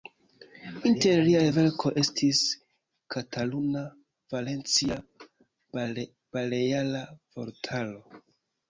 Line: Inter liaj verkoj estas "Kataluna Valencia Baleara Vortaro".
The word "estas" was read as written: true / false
false